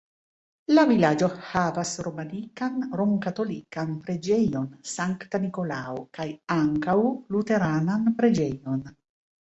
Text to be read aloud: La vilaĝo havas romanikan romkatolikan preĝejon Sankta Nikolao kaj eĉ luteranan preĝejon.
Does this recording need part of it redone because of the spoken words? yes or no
yes